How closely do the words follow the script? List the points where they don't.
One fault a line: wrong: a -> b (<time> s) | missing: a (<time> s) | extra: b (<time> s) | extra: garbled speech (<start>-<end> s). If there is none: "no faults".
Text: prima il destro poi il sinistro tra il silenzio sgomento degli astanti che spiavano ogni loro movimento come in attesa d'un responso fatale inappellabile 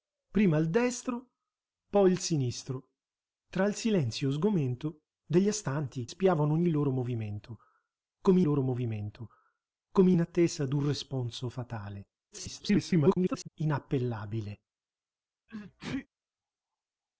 missing: che (6.1 s)
extra: loro movimento come (8.4 s)
extra: garbled speech (12.3-13.5 s)